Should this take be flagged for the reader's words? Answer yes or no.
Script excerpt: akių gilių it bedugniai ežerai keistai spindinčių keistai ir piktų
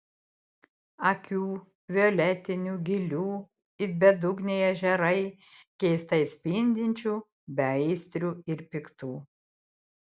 yes